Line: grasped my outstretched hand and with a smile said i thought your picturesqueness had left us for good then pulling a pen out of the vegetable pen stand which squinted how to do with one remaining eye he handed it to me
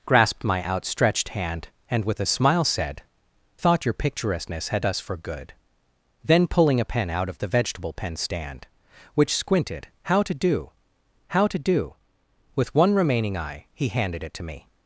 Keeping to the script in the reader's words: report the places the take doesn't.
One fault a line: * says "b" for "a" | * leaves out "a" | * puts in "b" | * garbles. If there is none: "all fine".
* leaves out "i"
* leaves out "left"
* puts in "how to do"